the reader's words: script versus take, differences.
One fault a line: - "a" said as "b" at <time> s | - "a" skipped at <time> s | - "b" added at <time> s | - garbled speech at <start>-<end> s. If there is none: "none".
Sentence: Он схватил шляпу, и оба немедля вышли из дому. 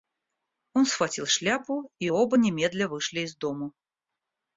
none